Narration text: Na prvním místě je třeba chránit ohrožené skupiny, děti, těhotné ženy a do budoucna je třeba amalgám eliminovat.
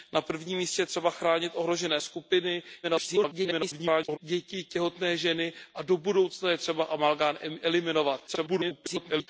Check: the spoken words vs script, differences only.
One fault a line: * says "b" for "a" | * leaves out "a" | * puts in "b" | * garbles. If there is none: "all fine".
* garbles
* garbles